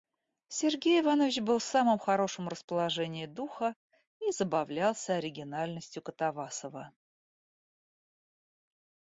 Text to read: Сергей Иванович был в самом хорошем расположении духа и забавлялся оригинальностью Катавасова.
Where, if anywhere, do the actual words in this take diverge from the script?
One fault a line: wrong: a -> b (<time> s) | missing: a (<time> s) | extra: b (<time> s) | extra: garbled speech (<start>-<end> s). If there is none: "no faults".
no faults